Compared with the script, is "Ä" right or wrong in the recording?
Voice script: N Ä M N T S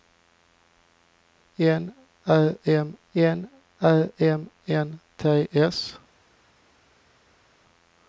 right